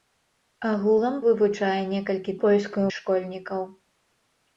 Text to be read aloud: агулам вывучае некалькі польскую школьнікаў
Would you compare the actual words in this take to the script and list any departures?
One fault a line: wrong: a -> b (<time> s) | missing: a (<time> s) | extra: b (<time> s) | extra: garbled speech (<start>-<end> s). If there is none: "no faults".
no faults